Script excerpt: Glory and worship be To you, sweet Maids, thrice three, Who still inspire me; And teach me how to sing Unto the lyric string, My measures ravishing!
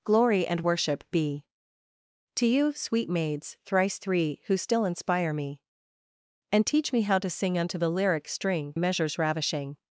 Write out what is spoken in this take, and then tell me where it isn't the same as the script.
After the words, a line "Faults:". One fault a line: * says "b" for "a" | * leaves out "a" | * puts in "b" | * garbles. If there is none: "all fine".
Glory and worship be To you, sweet Maids, thrice three, Who still inspire me; And teach me how to sing Unto the lyric string, Measures ravishing!
Faults:
* leaves out "My"